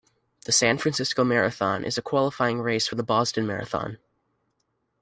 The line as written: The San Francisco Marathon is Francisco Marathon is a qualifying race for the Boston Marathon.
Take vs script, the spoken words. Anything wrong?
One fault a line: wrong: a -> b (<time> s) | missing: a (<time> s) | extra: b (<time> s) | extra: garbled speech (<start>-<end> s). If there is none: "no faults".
missing: Francisco Marathon is (2.0 s)